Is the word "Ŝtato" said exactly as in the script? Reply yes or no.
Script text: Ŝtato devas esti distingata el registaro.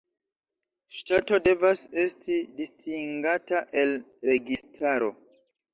yes